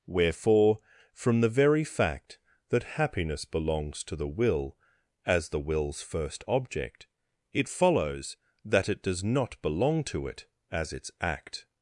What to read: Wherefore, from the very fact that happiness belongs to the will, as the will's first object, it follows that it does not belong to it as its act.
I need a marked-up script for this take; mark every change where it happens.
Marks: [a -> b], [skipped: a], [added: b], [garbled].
Wherefore, from the very fact that happiness belongs to the will, as the will's first object, it follows that it does not belong to it as its act.